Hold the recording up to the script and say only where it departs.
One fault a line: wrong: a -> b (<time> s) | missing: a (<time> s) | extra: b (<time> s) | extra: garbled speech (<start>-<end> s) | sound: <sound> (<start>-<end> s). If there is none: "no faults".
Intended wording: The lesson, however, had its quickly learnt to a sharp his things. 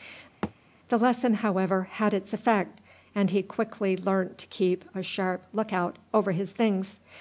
sound: thud (0.4-0.5 s)
extra: effect and he (2.3 s)
extra: keep (4.5 s)
extra: look out over (5.5 s)